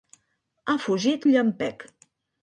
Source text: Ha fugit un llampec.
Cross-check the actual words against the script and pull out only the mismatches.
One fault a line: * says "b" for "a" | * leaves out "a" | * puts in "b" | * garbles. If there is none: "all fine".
all fine